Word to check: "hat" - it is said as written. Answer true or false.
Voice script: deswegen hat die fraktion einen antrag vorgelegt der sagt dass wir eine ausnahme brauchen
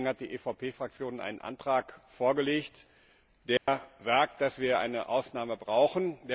true